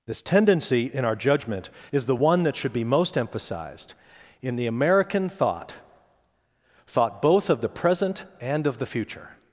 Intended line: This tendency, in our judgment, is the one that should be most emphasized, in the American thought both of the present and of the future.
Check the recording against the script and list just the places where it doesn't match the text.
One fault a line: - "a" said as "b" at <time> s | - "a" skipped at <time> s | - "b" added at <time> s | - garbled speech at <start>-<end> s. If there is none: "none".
- "thought" added at 6.8 s